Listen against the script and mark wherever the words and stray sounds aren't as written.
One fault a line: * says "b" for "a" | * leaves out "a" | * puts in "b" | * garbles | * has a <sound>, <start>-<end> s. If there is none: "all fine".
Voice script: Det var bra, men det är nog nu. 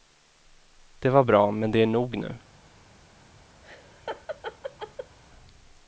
* has a laugh, 3.6-5.2 s